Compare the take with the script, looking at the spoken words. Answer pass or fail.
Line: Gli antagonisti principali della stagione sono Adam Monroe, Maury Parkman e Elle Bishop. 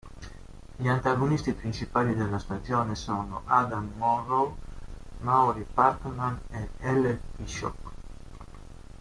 pass